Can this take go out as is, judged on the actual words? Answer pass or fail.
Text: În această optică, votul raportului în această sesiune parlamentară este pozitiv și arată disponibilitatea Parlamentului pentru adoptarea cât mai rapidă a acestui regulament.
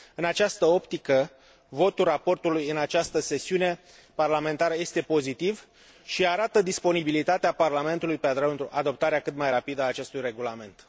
pass